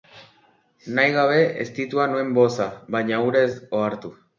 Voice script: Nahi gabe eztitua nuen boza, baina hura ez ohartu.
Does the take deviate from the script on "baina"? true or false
false